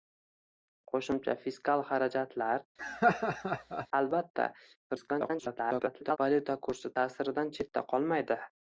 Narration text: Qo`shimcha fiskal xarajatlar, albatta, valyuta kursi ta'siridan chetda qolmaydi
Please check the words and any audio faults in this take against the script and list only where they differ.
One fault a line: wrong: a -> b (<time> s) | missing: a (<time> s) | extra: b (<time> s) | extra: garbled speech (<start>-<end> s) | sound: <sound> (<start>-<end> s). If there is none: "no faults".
sound: laugh (2.8-3.9 s)
extra: garbled speech (4.9-6.2 s)